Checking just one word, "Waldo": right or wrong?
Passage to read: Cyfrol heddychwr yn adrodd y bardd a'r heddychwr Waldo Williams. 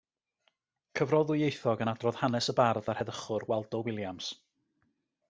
right